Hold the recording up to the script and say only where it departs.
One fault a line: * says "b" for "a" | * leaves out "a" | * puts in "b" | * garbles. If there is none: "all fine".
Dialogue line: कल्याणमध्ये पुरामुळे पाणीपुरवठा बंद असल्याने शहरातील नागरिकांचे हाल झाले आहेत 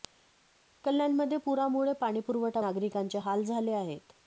* leaves out "बंद असल्याने शहरातील"